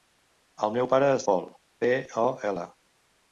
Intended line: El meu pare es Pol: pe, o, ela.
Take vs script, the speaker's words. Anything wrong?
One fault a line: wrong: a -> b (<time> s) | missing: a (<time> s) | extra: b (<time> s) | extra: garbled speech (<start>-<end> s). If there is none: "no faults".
no faults